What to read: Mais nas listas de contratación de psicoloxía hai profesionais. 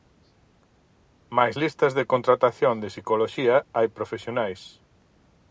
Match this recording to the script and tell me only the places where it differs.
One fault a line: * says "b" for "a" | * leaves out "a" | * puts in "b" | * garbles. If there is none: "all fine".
* leaves out "nas"